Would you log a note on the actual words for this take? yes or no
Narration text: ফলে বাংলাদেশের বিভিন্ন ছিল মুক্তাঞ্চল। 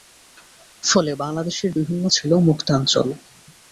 no